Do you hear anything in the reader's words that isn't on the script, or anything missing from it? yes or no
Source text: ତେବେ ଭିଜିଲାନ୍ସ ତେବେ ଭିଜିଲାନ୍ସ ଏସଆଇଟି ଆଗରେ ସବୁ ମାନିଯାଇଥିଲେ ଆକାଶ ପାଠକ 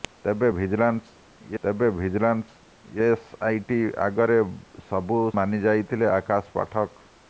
no